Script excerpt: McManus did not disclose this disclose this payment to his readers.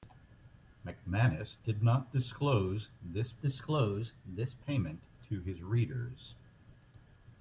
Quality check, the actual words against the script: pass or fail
pass